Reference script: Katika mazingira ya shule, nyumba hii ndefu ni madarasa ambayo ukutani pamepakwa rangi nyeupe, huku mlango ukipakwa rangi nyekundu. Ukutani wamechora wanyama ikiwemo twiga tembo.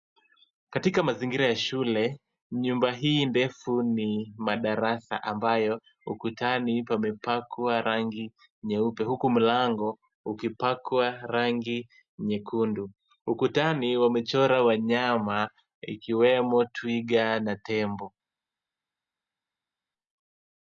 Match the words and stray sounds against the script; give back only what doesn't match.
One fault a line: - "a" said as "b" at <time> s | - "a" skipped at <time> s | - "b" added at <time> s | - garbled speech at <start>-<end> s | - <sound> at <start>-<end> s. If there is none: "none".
- "na" added at 17.4 s